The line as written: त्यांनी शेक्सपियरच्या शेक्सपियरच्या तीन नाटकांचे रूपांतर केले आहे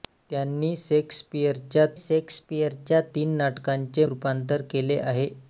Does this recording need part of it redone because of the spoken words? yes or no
no